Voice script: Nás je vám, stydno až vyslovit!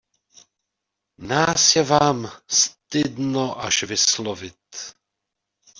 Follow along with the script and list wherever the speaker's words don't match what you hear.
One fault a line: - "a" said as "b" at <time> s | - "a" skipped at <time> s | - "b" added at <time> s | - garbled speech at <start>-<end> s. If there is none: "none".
none